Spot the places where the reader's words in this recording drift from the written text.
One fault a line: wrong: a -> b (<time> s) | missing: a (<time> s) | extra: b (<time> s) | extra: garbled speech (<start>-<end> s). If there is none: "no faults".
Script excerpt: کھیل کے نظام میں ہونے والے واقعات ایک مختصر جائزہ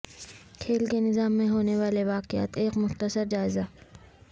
no faults